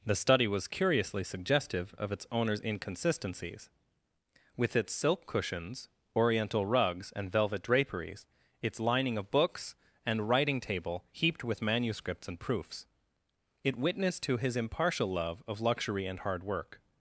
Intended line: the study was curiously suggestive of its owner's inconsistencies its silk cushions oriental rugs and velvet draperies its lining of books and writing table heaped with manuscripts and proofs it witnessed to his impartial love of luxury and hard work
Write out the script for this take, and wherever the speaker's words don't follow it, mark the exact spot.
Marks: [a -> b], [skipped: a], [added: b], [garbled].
the study was curiously suggestive of its owner's inconsistencies [added: with] its silk cushions oriental rugs and velvet draperies its lining of books and writing table heaped with manuscripts and proofs it witnessed to his impartial love of luxury and hard work